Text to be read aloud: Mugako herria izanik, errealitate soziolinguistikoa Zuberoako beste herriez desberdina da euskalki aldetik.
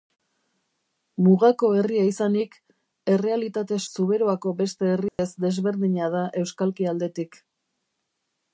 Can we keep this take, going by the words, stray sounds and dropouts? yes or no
no